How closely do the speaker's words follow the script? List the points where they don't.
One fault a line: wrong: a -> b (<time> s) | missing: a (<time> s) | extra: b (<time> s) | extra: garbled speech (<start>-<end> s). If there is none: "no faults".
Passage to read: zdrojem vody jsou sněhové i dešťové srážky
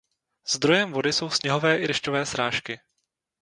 no faults